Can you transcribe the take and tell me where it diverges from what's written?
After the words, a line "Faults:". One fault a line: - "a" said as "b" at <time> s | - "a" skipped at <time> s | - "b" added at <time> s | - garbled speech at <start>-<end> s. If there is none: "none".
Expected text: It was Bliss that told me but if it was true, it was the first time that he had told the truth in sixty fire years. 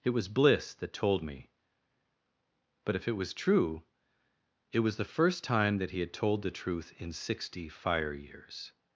It was Bliss that told me but if it was true, it was the first time that he had told the truth in sixty fire years.
Faults:
none